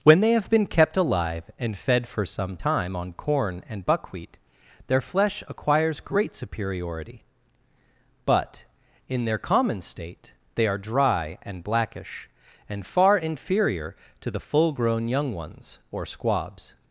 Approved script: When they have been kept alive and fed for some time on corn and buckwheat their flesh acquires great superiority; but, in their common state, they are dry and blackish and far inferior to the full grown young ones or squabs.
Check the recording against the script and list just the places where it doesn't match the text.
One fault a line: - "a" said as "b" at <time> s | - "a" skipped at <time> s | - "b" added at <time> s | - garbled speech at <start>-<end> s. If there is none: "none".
none